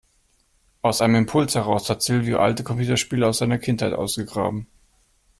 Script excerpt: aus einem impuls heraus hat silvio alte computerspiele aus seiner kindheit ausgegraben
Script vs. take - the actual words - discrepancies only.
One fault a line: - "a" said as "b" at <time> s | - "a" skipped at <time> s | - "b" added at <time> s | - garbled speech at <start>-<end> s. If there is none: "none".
none